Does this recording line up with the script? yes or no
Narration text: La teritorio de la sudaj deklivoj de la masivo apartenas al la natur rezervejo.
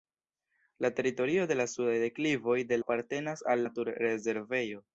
no